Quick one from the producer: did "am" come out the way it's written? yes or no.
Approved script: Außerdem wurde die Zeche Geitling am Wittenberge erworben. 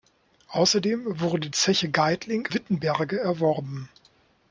no